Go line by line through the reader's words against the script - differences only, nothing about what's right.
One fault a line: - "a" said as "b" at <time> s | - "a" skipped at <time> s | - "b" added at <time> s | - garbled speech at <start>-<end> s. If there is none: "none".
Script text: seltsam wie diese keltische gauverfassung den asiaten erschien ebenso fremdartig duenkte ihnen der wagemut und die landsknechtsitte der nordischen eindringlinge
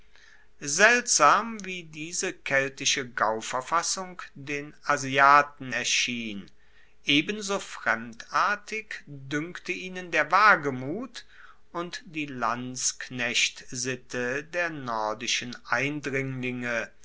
none